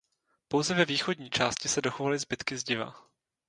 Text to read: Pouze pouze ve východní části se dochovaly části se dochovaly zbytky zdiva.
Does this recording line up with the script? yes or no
no